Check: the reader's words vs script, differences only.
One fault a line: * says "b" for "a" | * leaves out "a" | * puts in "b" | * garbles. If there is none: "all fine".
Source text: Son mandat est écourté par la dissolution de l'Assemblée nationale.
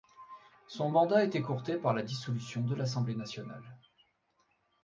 all fine